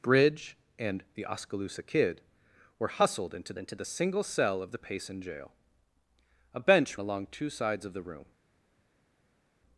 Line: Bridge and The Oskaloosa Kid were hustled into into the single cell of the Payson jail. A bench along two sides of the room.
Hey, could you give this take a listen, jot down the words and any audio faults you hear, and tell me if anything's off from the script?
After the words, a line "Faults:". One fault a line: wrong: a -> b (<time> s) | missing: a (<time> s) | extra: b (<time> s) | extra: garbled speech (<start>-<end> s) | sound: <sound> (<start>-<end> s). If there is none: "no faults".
Bridge and The Oskaloosa Kid were hustled into into the single cell of the Payson jail. A bench along two sides of the room.
Faults:
no faults